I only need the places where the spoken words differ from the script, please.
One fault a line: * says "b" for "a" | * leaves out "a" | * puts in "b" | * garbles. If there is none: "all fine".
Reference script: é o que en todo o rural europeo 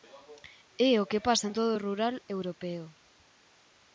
* puts in "pasa"